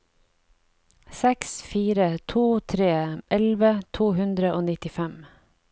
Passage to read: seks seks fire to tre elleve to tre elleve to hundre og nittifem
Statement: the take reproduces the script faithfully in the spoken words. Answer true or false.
false